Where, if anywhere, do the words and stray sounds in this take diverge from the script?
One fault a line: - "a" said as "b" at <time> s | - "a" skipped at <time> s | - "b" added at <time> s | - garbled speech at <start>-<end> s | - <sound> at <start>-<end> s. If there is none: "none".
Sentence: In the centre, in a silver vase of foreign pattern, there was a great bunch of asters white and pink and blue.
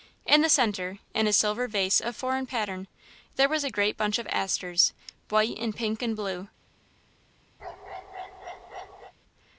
- bark at 7.6-9.1 s